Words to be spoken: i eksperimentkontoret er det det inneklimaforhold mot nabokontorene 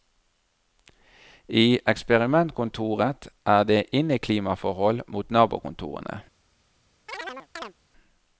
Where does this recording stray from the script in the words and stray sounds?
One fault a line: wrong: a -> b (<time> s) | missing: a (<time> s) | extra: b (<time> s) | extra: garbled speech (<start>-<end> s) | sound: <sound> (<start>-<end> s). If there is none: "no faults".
missing: det (3.8 s)
sound: chirp (7.1-7.7 s)